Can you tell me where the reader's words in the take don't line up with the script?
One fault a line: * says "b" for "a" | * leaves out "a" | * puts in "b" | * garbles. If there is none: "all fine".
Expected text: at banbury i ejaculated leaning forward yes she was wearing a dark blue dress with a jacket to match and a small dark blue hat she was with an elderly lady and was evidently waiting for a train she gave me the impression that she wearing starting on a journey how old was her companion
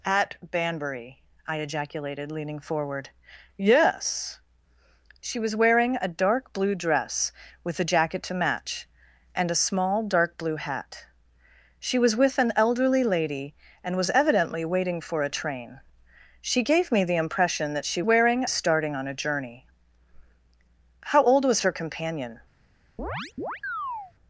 all fine